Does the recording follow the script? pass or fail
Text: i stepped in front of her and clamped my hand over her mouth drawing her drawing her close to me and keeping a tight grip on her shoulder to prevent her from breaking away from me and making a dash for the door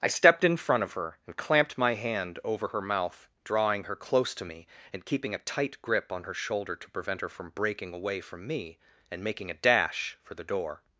fail